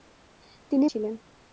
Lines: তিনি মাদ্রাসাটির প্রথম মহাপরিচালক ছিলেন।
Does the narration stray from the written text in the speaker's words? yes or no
yes